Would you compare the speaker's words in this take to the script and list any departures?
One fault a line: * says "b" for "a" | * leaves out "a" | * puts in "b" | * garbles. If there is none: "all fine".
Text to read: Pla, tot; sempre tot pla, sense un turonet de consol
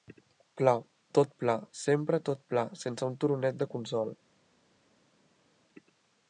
* puts in "pla"